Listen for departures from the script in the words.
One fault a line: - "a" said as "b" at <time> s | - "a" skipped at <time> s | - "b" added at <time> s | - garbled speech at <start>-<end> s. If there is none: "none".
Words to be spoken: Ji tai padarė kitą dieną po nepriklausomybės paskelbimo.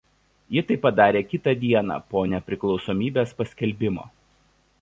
none